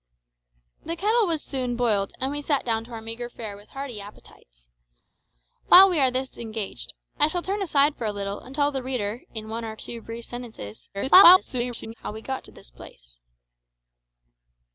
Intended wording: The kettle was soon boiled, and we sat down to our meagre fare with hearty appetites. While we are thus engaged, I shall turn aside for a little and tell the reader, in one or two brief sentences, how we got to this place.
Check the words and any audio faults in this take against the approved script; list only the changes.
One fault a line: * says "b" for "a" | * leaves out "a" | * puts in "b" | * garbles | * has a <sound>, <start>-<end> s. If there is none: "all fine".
* garbles